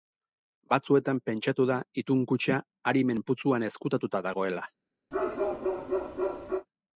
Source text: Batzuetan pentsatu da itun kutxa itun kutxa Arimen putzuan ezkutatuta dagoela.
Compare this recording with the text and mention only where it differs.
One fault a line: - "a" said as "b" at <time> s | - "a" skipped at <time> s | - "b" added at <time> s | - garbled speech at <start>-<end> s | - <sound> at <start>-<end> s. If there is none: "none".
- "itun kutxa" skipped at 2.6 s
- bark at 5.1-6.7 s